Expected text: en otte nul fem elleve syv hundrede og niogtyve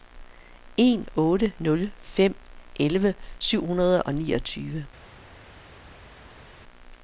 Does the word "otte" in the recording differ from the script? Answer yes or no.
no